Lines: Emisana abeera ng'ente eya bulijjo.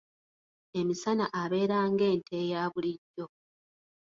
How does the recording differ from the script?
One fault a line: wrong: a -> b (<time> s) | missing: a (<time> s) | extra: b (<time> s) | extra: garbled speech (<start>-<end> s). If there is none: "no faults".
no faults